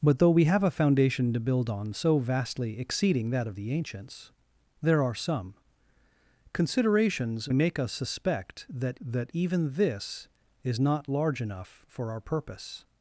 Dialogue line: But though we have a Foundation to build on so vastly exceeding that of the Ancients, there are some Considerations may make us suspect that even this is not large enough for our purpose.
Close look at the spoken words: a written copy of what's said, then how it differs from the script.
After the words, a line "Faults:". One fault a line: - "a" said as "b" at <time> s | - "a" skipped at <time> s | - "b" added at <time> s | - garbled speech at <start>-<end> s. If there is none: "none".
But though we have a Foundation to build on so vastly exceeding that of the Ancients, there are some Considerations make us suspect that that even this is not large enough for our purpose.
Faults:
- "may" skipped at 7.5 s
- "that" added at 9.0 s